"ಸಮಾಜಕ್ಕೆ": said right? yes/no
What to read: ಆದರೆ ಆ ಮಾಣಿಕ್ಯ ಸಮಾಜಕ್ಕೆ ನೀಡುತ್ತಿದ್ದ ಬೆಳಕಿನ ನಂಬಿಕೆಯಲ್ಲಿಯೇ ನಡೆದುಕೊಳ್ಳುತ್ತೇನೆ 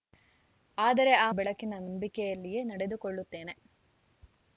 no